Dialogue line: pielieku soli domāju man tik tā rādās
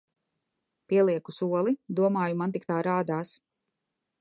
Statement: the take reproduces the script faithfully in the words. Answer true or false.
true